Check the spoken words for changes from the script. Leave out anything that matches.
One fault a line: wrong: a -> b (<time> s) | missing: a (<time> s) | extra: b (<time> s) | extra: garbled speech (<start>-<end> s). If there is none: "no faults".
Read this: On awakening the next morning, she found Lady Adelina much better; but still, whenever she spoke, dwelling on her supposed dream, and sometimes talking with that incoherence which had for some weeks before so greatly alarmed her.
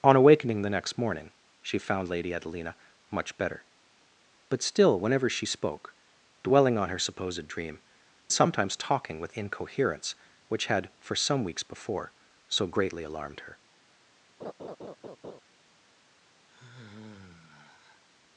missing: and (7.8 s)
missing: that (9.3 s)